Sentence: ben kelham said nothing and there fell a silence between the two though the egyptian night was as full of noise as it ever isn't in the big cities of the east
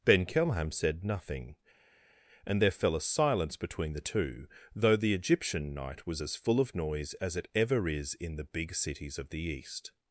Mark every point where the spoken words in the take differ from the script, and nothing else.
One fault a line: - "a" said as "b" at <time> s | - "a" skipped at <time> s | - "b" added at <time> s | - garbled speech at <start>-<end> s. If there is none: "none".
- "isn't" said as "is" at 7.9 s